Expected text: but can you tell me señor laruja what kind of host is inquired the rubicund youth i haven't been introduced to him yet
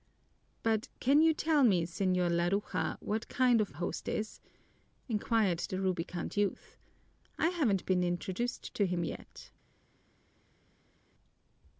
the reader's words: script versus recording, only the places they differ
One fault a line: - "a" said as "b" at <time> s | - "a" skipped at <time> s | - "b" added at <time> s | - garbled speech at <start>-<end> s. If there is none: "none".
none